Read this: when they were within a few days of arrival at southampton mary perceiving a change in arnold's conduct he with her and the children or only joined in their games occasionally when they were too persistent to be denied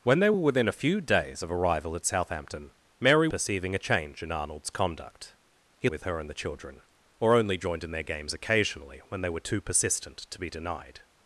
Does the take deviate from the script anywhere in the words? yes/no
no